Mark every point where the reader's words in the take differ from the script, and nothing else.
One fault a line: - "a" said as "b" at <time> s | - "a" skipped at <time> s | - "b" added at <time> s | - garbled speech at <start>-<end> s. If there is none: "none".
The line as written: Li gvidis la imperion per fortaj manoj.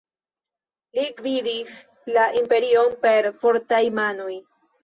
none